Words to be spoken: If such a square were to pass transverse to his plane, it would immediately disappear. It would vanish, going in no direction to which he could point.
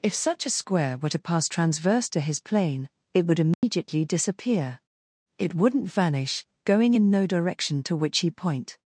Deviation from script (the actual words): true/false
true